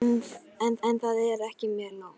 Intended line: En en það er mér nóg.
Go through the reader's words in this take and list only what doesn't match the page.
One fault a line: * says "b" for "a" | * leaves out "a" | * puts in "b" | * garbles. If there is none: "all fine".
all fine